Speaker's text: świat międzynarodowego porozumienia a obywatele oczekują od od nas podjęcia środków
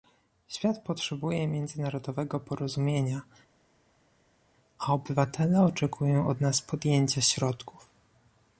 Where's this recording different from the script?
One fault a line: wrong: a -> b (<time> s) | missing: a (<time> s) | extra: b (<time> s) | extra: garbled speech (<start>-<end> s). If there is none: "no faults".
extra: potrzebuje (0.8 s)
missing: od (6.4 s)